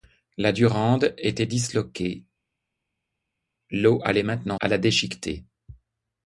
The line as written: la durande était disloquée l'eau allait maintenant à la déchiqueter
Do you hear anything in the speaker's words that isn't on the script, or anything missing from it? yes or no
no